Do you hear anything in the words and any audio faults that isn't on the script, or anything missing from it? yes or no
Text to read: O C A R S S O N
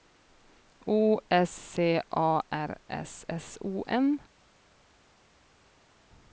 yes